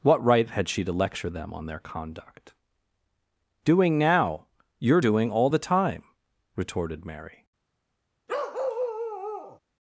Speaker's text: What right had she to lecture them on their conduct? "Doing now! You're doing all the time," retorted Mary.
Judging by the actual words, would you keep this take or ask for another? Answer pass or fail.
pass